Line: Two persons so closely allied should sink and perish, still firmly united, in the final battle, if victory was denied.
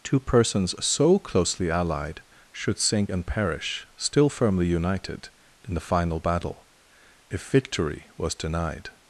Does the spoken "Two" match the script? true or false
true